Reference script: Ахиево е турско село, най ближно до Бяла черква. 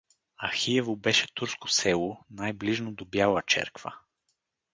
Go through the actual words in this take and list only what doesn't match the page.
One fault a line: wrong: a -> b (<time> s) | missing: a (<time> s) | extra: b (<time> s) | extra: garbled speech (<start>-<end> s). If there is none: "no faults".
wrong: е -> беше (0.9 s)